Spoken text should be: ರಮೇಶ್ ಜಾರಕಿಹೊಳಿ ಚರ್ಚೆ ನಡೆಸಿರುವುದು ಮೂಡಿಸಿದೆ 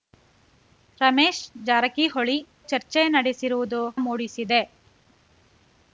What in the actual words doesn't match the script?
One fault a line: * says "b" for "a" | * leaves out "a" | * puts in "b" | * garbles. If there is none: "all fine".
all fine